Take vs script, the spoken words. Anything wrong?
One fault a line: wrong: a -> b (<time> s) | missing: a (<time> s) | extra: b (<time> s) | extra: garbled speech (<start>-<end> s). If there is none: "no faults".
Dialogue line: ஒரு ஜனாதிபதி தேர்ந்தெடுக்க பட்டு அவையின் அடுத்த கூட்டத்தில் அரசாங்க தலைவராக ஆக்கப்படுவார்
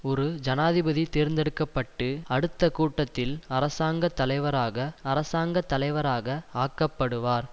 missing: அவையின் (2.1 s)
extra: அரசாங்க தலைவராக (5.0 s)